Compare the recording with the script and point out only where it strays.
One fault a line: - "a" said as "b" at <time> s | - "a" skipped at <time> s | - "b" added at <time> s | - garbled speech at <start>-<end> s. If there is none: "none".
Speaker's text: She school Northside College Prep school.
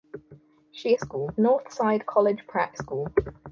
none